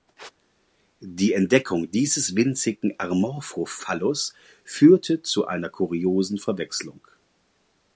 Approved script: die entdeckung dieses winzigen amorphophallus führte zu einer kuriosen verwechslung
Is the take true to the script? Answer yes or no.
yes